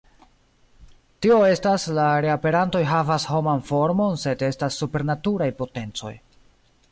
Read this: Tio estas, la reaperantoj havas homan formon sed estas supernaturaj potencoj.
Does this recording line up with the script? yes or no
yes